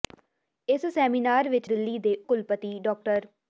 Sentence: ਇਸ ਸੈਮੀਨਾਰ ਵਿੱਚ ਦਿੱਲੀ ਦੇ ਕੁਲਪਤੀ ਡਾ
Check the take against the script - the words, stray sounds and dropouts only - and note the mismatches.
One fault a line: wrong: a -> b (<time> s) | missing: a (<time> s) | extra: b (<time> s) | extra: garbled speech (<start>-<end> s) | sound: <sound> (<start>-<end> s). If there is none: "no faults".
no faults